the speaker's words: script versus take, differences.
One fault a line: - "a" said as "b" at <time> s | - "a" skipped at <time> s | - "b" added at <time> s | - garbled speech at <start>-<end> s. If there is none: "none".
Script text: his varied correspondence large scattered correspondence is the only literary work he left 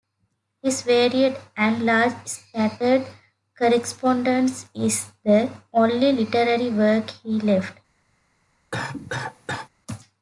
- "correspondence" said as "and" at 1.6 s